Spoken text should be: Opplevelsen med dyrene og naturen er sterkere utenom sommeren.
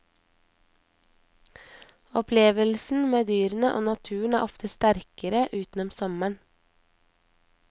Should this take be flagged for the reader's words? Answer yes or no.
yes